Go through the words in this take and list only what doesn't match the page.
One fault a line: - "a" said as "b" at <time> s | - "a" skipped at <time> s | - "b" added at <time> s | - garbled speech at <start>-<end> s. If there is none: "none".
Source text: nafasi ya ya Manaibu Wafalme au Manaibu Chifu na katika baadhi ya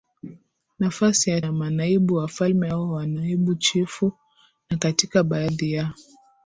none